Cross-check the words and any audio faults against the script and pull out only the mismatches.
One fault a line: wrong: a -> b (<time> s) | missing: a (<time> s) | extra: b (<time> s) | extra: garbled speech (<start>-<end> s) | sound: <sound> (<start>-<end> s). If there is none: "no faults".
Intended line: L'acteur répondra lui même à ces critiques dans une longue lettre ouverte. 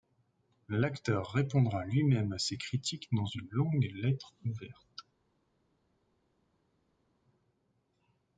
no faults